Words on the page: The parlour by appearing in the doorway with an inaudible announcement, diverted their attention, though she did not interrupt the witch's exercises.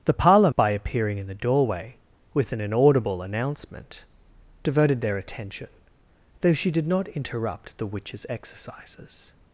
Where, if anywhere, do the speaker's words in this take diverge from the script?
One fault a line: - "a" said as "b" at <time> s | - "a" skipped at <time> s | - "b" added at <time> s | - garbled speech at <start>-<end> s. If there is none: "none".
none